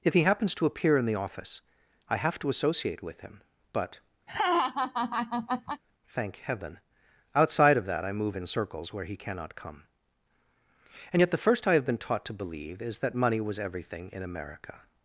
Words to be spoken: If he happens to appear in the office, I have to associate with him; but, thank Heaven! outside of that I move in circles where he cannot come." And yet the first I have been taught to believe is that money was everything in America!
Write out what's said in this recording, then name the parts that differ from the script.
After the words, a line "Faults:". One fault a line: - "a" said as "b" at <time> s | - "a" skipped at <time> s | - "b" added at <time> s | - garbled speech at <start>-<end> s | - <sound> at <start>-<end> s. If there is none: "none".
If he happens to appear in the office, I have to associate with him; but, thank Heaven! outside of that I move in circles where he cannot come." And yet the first I have been taught to believe is that money was everything in America!
Faults:
- laugh at 4.3-5.8 s